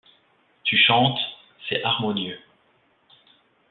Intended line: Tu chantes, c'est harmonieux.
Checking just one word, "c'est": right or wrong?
right